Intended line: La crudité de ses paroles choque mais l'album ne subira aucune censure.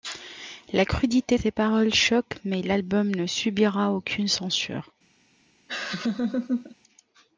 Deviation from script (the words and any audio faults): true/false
true